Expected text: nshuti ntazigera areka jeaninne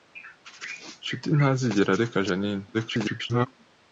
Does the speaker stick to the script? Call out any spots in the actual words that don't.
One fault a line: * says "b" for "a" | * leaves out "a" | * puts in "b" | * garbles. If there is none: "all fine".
* garbles